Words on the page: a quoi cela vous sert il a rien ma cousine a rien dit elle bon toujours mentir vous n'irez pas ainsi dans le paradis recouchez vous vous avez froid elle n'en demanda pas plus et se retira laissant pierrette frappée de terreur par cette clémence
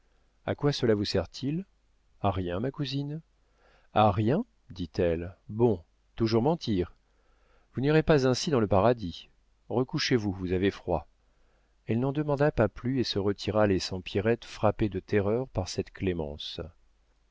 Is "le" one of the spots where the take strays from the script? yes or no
no